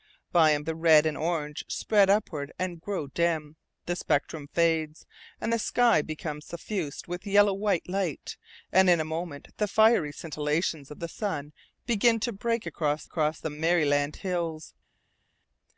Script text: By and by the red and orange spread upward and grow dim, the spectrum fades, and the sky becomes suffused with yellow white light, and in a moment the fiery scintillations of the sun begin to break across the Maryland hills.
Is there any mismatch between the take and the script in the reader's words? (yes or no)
yes